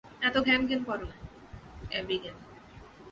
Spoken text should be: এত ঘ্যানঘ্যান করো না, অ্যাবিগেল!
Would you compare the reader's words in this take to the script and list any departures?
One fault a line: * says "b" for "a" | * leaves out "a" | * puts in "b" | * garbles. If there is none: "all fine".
all fine